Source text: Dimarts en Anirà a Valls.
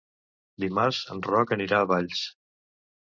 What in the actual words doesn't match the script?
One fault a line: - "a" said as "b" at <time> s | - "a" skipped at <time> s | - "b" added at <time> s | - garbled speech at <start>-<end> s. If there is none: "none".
- "Roc" added at 1.3 s